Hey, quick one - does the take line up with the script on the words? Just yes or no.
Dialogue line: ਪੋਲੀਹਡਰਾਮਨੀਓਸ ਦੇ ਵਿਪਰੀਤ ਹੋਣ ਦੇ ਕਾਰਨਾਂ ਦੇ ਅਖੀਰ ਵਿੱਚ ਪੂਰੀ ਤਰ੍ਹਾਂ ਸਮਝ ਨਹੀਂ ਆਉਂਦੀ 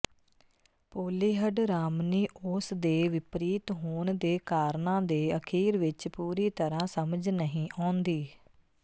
yes